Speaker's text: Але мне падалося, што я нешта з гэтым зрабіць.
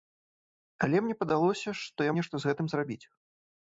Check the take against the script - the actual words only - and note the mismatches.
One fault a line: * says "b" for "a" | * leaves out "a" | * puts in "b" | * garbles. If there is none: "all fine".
all fine